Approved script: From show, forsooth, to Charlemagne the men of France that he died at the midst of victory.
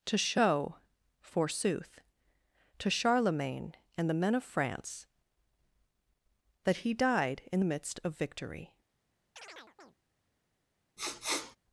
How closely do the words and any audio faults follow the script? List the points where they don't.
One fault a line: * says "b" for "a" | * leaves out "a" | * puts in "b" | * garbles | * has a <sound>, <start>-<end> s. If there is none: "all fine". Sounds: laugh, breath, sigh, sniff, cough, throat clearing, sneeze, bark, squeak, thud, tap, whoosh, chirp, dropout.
* says "To" for "From"
* puts in "and"
* says "in" for "at"
* has a chirp, 9.4-10.0 s
* has a sniff, 11.0-11.6 s